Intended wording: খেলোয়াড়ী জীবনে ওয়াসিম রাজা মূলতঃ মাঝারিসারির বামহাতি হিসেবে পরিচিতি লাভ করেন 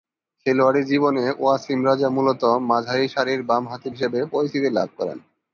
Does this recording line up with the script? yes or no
yes